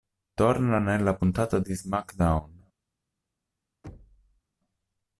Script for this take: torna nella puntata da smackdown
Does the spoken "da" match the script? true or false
false